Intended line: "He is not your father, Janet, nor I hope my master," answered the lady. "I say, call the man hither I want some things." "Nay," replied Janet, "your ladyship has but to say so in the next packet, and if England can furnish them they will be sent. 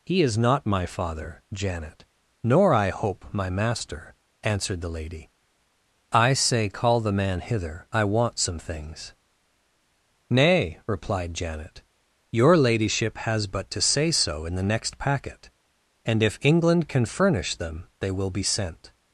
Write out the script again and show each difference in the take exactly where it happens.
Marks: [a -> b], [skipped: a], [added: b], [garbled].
"He is not [your -> my] father, Janet, nor I hope my master," answered the lady. "I say, call the man hither I want some things." "Nay," replied Janet, "your ladyship has but to say so in the next packet, and if England can furnish them they will be sent.